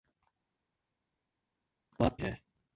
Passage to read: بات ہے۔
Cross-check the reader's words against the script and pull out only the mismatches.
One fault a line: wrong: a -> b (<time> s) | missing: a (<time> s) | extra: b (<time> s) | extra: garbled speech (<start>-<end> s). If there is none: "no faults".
no faults